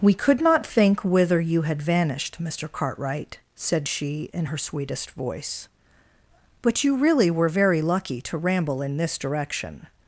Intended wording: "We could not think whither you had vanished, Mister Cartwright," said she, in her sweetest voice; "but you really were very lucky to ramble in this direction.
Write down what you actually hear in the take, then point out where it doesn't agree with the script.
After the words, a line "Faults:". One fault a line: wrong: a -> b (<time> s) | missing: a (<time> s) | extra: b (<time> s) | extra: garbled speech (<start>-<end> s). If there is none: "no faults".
"We could not think whither you had vanished, Mister Cartwright," said she, in her sweetest voice; "but you really were very lucky to ramble in this direction.
Faults:
no faults